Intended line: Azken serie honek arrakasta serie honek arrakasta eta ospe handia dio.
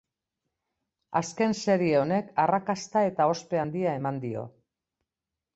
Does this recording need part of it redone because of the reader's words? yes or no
yes